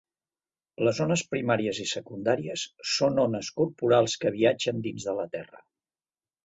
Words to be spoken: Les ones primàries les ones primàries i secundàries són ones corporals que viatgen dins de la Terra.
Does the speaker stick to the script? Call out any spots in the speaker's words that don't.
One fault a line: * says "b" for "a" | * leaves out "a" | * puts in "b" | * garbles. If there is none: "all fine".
* leaves out "les ones primàries"